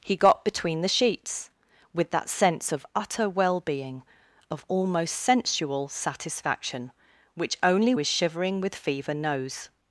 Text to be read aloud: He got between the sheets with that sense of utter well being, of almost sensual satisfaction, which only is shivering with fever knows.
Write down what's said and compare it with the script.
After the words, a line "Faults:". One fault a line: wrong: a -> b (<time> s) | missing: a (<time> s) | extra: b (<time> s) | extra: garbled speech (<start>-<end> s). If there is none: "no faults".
He got between the sheets with that sense of utter well being, of almost sensual satisfaction, which only is shivering with fever knows.
Faults:
no faults